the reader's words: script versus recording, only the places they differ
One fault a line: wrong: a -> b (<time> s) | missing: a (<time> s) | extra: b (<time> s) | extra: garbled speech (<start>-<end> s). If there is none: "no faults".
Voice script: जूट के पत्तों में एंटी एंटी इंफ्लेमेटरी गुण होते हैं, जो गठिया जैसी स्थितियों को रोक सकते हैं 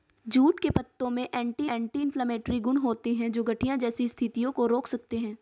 no faults